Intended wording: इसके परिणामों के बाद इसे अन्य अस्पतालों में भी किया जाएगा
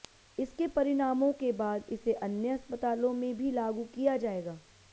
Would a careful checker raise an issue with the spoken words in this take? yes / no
yes